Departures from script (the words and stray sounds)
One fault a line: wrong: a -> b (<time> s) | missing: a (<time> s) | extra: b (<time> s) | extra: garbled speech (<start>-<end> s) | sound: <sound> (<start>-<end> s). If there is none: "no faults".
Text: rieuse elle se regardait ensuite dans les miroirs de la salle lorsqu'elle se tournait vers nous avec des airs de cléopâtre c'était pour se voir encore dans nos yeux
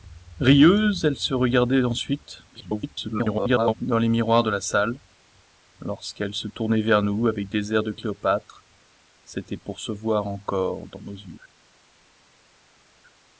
extra: garbled speech (2.5-3.7 s)